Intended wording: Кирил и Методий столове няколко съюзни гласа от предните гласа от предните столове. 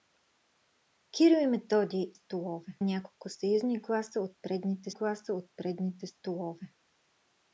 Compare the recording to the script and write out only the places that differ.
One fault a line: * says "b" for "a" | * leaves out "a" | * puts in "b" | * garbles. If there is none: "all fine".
all fine